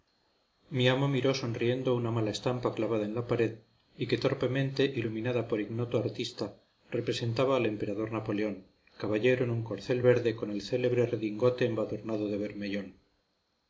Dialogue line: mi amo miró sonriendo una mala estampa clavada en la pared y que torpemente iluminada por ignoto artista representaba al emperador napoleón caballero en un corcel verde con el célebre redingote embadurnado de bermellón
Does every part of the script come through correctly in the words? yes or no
yes